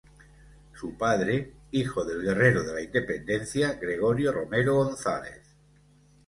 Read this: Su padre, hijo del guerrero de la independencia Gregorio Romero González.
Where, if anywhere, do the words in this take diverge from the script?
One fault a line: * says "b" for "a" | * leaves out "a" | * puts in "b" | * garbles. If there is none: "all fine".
all fine